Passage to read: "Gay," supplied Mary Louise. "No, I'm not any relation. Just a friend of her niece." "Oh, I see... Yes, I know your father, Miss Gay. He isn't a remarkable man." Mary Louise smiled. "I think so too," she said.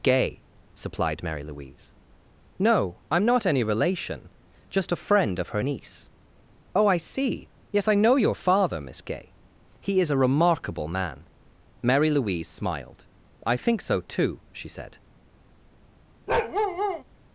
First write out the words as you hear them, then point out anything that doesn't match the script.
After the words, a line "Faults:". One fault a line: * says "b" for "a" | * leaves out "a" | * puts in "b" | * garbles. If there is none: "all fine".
"Gay," supplied Mary Louise. "No, I'm not any relation. Just a friend of her niece." "Oh, I see... Yes, I know your father, Miss Gay. He is a remarkable man." Mary Louise smiled. "I think so too," she said.
Faults:
* says "is" for "isn't"